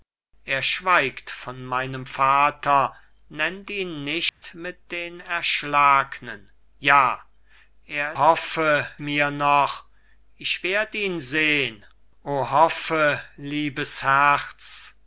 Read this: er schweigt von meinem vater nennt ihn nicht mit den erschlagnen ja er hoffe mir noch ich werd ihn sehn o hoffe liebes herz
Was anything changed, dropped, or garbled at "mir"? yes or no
no